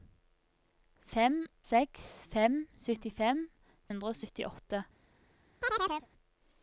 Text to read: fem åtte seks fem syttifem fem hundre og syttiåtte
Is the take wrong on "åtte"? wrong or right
wrong